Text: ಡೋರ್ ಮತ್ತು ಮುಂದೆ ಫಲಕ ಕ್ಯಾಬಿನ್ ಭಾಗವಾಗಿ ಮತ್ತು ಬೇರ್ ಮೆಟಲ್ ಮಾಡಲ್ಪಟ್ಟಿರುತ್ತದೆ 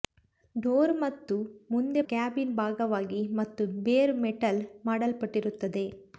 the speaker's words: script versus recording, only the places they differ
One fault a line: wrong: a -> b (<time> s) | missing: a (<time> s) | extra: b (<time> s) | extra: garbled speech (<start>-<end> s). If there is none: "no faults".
missing: ಫಲಕ (2.0 s)